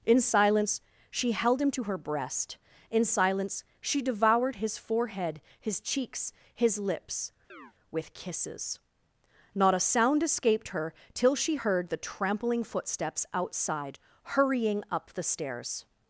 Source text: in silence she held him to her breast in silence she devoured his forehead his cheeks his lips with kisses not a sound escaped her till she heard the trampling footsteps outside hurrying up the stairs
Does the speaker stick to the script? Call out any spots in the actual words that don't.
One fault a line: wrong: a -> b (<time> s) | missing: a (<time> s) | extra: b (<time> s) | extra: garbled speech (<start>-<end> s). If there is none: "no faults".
no faults